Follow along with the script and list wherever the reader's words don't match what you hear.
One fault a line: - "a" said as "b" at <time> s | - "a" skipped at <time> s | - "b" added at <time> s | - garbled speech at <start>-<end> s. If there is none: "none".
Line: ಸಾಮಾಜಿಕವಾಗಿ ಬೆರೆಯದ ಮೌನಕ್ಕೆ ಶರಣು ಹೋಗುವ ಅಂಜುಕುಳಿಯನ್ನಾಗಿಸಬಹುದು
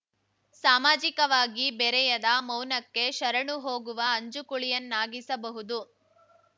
none